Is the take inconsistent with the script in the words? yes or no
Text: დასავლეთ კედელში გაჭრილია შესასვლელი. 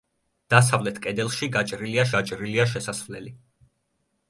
yes